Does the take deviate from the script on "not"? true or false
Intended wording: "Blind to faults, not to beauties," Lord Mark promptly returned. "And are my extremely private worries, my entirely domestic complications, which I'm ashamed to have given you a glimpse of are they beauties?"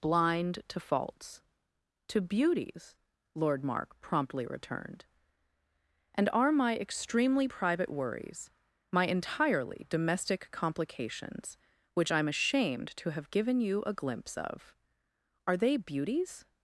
true